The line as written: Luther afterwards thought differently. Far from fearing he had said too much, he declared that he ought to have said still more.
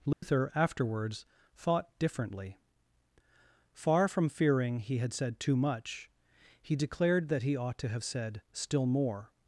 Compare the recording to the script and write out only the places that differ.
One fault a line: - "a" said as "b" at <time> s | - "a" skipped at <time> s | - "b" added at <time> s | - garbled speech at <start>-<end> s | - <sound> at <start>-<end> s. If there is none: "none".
- dropout at 0.1-0.2 s